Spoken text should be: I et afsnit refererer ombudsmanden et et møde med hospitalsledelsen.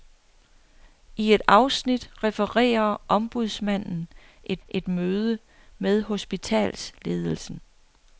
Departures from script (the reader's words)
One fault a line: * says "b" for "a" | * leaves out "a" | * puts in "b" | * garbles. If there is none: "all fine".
all fine